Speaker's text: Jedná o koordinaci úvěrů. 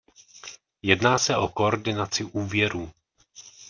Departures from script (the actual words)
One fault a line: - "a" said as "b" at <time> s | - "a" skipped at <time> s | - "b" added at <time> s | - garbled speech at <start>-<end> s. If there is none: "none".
- "se" added at 1.2 s